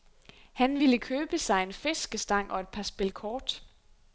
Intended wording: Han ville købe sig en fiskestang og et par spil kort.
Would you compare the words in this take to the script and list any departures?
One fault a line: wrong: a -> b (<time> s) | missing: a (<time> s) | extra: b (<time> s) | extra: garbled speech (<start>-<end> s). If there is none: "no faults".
no faults